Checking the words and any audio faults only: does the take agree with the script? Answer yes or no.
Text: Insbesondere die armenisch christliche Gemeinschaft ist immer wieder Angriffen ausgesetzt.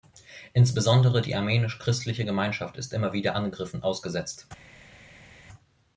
yes